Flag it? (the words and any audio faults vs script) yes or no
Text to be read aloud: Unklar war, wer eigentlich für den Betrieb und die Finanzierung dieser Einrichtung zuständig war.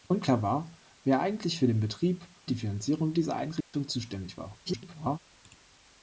yes